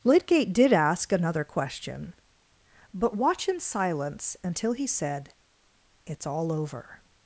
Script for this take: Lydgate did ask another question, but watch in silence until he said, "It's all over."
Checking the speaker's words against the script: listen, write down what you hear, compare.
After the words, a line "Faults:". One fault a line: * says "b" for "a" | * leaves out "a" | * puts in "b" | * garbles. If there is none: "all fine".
Lydgate did ask another question, but watch in silence until he said, "It's all over."
Faults:
all fine